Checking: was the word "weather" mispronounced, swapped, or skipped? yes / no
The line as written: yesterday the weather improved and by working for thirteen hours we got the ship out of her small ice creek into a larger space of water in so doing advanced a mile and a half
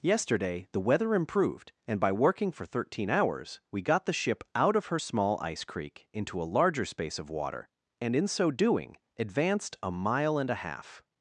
no